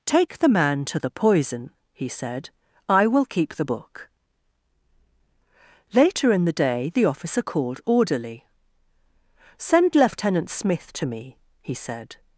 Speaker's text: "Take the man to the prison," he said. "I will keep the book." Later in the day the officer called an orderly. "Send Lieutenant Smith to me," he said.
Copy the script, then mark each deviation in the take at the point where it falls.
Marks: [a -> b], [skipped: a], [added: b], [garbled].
"Take the man to the [prison," -> poison] he said. "I will keep the book." Later in the day the officer called [skipped: an] orderly. "Send Lieutenant Smith to me," he said.